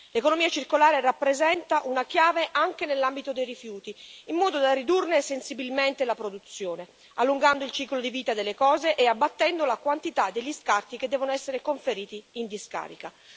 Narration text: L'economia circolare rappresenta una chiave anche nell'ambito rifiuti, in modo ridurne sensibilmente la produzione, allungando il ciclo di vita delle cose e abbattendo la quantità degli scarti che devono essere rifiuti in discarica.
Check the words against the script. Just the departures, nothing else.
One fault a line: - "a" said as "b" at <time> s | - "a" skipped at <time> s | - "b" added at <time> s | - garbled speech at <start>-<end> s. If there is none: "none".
- "dei" added at 3.3 s
- "da" added at 4.6 s
- "rifiuti" said as "conferiti" at 11.6 s